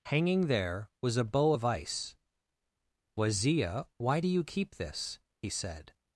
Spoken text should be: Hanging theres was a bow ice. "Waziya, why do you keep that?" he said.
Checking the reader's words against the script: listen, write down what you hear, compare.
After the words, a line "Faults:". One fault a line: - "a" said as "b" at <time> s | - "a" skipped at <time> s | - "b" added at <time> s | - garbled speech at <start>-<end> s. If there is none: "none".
Hanging there was a bow of ice. "Waziya, why do you keep this?" he said.
Faults:
- "theres" said as "there" at 0.5 s
- "of" added at 1.5 s
- "that" said as "this" at 4.8 s